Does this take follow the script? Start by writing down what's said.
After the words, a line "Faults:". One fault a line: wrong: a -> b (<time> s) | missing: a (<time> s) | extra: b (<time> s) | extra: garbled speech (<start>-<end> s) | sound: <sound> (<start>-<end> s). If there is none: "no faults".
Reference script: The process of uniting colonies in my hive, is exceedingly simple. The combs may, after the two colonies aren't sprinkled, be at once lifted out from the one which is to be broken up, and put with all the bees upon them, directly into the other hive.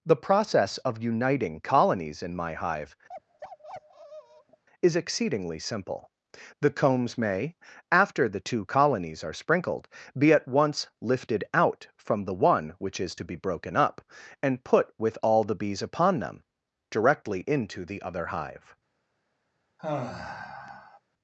The process of uniting colonies in my hive, is exceedingly simple. The combs may, after the two colonies are sprinkled, be at once lifted out from the one which is to be broken up, and put with all the bees upon them, directly into the other hive.
Faults:
sound: bark (3.1-4.6 s)
wrong: aren't -> are (9.2 s)
sound: sigh (19.8-21.0 s)